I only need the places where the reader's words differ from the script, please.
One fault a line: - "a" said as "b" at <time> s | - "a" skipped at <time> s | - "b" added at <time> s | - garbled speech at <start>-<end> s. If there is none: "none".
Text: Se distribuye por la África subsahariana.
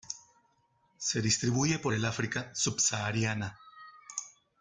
- "la" said as "el" at 1.9 s